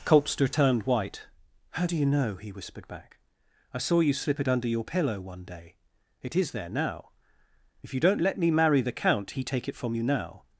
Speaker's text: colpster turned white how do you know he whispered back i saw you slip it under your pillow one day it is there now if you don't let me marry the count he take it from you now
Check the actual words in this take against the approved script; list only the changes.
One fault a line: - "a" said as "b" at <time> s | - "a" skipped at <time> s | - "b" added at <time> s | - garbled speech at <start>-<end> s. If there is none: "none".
none